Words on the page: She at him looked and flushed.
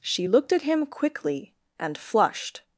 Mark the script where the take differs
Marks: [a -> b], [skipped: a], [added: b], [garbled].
She [added: looked] at him [looked -> quickly] and flushed.